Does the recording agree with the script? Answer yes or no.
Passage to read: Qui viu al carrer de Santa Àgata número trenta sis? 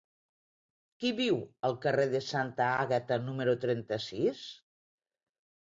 yes